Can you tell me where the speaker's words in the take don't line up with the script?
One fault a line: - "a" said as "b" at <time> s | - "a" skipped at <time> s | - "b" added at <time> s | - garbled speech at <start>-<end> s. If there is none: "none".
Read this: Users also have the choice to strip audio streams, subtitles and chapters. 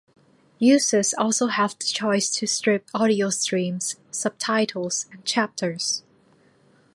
none